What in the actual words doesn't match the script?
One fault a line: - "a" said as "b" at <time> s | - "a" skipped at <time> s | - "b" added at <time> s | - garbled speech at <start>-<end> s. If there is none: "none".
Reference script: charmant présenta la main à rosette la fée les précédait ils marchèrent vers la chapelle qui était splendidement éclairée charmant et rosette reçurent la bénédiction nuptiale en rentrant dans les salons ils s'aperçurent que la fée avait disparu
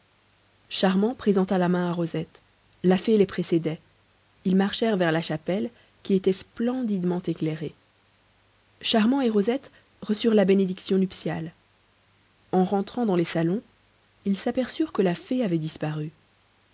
none